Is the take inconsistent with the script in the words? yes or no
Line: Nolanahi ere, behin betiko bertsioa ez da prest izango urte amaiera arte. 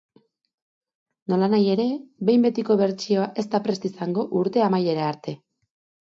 no